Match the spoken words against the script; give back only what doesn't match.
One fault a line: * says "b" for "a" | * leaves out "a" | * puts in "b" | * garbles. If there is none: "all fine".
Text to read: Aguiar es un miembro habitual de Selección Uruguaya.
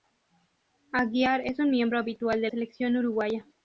all fine